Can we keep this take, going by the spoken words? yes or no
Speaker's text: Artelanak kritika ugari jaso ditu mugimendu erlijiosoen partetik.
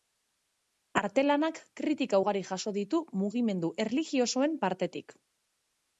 yes